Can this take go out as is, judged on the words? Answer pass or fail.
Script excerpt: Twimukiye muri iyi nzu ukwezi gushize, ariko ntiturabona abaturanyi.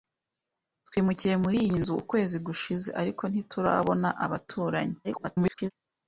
fail